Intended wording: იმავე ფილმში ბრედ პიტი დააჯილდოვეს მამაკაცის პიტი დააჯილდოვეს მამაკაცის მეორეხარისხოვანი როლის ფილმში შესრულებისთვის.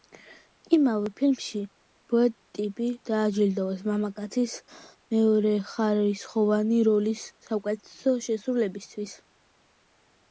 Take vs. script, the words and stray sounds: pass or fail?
fail